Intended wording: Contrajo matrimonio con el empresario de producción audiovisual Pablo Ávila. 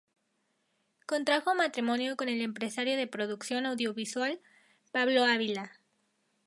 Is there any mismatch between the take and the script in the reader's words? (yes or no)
no